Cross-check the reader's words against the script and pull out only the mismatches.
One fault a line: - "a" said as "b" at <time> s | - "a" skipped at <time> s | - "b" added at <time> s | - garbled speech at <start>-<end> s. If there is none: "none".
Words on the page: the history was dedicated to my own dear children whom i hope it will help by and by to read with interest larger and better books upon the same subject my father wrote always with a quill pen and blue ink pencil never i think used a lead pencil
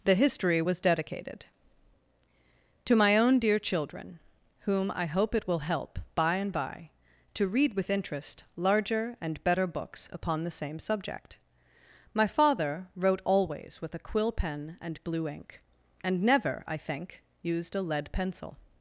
- "pencil" said as "and" at 16.0 s